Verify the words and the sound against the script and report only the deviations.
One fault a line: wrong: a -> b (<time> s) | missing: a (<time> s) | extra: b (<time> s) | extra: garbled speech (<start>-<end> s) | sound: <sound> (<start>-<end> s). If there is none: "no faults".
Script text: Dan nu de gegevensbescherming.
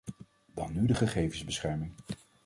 no faults